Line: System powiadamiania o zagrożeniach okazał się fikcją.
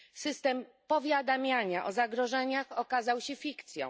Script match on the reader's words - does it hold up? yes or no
yes